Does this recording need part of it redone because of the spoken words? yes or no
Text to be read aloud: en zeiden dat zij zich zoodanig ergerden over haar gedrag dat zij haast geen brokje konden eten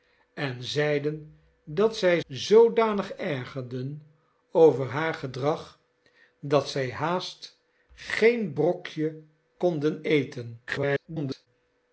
yes